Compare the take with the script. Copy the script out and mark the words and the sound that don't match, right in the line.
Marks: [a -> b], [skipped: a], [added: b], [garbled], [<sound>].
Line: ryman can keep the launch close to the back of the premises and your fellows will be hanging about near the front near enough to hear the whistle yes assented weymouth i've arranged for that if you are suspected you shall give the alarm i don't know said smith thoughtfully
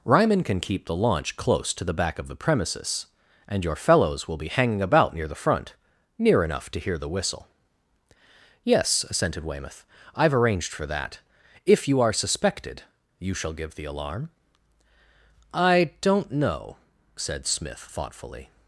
ryman can keep the launch close to the back of the premises and your fellows will be hanging about near the front near enough to hear the whistle yes assented weymouth i've arranged for that if you are suspected you shall give the alarm i don't know said smith thoughtfully